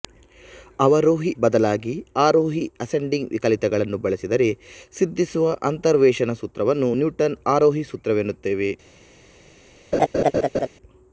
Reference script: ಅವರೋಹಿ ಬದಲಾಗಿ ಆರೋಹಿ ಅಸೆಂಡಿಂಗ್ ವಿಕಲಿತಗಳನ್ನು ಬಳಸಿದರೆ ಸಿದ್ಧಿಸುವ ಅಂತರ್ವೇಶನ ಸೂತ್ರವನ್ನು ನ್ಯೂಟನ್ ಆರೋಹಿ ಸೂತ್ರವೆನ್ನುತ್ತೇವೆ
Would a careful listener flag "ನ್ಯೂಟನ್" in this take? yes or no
no